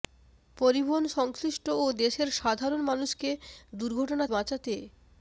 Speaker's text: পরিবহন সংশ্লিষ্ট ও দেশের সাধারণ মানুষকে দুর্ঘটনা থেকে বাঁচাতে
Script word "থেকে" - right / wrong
wrong